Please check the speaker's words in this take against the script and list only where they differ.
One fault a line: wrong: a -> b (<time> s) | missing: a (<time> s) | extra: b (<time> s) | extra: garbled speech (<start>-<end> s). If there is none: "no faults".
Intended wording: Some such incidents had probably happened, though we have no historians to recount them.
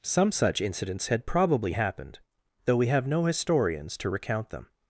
no faults